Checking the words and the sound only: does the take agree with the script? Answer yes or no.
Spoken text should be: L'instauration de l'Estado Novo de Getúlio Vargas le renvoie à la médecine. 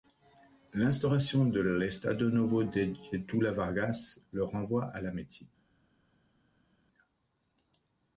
yes